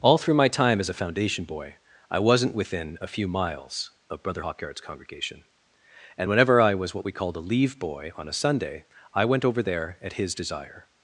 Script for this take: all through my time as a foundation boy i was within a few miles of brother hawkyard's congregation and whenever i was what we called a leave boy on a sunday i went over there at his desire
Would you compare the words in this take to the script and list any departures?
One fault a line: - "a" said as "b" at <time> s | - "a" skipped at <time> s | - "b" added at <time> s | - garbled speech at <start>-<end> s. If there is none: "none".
- "was" said as "wasn't" at 2.2 s